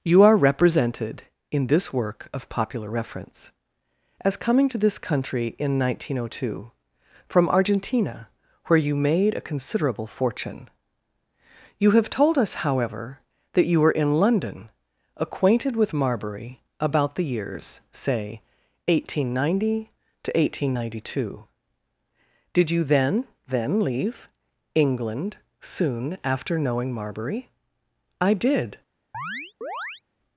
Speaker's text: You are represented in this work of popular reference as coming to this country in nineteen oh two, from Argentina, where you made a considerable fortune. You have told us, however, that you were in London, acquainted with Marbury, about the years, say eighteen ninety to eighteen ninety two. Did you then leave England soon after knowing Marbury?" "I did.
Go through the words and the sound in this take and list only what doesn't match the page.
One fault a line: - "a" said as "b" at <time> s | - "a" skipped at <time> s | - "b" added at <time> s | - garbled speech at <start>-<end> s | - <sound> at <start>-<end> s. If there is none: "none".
- "then" added at 23.5 s
- chirp at 29.1-30.0 s